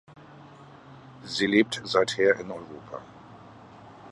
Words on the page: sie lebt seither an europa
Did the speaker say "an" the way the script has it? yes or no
no